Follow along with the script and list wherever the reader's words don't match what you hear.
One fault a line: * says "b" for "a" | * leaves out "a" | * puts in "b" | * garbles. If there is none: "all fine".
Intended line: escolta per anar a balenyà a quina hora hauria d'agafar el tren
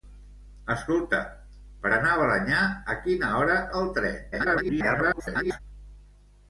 * leaves out "hauria d'agafar"
* garbles